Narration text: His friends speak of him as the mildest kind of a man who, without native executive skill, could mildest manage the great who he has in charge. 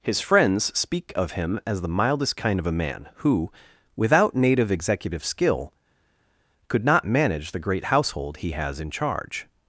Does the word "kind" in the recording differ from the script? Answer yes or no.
no